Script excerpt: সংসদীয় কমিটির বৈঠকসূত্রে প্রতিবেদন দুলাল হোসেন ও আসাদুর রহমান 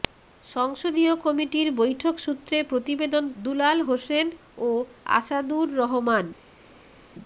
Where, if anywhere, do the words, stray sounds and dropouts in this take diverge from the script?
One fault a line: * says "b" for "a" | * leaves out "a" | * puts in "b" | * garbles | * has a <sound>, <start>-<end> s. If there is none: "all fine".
all fine